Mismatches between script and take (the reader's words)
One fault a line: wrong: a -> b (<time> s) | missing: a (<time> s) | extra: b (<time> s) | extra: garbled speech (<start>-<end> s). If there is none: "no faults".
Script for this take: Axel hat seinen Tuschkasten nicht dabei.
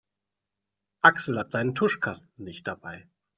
no faults